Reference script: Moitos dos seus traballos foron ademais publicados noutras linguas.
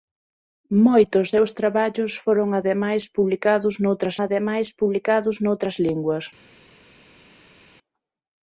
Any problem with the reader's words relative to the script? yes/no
yes